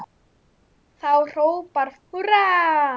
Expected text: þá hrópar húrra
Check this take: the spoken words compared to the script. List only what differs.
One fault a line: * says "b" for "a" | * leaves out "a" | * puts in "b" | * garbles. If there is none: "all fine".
all fine